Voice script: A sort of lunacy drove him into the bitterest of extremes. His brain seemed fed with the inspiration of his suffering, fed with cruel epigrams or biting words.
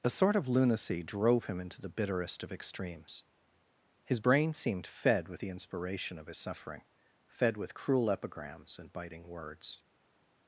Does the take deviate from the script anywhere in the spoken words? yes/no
yes